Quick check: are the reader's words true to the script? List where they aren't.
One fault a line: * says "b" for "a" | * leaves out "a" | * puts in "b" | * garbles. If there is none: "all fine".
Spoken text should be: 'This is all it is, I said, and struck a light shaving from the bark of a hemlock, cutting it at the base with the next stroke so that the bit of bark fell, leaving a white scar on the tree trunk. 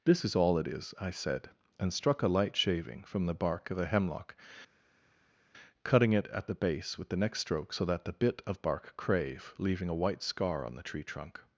* says "crave" for "fell"